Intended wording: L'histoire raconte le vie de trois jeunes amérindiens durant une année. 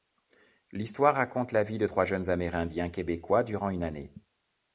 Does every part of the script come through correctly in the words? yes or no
no